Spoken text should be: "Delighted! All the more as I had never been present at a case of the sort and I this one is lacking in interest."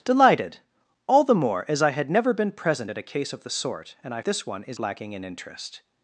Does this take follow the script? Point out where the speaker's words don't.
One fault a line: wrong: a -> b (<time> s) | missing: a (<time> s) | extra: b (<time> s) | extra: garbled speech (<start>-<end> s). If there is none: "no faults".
no faults